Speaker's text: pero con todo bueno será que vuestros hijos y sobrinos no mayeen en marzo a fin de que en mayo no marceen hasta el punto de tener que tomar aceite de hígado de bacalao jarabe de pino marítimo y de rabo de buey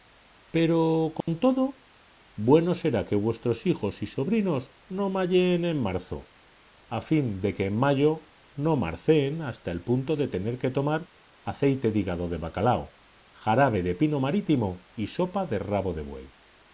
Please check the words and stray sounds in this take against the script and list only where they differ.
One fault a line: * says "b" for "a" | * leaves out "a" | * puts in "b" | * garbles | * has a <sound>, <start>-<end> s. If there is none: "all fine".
* has a dropout, 1.2-1.3 s
* puts in "sopa"